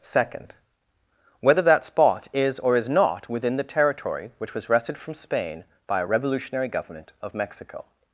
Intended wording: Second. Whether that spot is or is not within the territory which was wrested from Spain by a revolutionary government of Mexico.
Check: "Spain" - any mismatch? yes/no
no